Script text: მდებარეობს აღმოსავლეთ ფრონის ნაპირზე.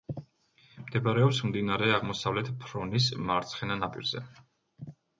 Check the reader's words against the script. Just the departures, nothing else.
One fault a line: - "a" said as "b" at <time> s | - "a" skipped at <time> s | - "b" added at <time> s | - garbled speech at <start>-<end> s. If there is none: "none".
- "მდინარე" added at 1.5 s
- "მარცხენა" added at 3.3 s